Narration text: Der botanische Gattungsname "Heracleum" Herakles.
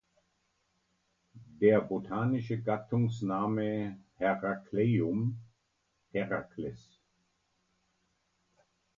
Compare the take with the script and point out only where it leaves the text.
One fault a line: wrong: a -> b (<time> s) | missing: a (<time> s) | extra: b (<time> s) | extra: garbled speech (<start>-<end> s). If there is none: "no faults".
no faults